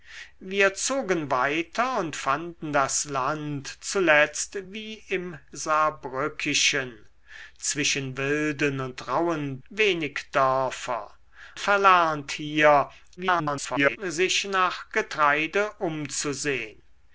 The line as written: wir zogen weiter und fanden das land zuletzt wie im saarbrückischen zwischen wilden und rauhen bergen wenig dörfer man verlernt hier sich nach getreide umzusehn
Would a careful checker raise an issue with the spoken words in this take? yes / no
yes